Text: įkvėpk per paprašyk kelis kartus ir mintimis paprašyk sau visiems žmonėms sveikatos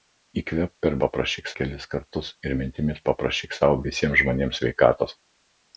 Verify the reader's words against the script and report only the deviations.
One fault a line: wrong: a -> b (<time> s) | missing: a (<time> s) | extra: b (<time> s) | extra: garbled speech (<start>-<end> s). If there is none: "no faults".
no faults